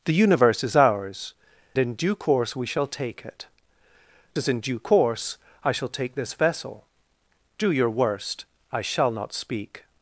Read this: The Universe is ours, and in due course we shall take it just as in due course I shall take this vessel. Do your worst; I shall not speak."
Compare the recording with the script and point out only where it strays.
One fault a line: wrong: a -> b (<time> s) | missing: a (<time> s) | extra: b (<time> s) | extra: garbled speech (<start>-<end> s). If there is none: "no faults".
missing: and (1.4 s)
missing: just (3.5 s)